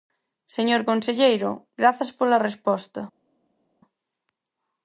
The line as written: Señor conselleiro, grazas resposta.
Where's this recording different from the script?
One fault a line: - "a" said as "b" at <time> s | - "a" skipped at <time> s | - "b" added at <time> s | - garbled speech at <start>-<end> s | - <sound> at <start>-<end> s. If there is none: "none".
- "pola" added at 2.2 s